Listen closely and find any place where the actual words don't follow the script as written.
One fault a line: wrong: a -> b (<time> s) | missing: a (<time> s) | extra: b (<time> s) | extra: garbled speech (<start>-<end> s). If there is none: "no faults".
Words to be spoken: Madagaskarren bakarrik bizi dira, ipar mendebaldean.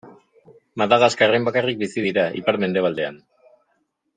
no faults